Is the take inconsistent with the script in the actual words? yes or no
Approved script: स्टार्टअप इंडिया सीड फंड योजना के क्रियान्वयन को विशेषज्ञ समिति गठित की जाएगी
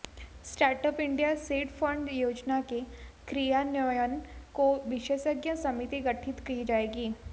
no